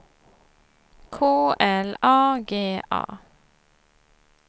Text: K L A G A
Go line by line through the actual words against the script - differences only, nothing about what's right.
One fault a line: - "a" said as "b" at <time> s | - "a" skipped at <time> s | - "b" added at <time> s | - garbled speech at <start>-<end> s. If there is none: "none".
none